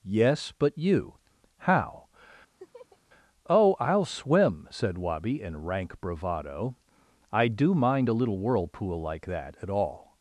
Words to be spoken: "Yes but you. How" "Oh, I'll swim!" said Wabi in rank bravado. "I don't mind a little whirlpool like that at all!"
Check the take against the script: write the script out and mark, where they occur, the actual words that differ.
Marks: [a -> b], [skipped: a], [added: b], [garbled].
"Yes but you. How" "Oh, I'll swim!" said Wabi in rank bravado. "I [don't -> do] mind a little whirlpool like that at all!"